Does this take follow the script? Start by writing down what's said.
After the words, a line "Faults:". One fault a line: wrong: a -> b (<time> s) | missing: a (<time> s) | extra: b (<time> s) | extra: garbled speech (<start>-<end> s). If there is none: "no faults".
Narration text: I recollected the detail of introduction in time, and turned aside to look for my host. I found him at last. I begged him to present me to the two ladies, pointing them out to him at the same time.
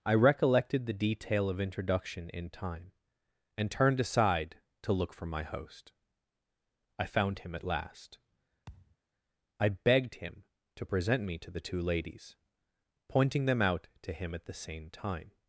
I recollected the detail of introduction in time, and turned aside to look for my host. I found him at last. I begged him to present me to the two ladies, pointing them out to him at the same time.
Faults:
no faults